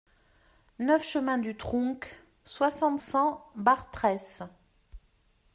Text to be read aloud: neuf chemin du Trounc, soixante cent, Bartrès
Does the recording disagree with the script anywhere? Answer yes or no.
no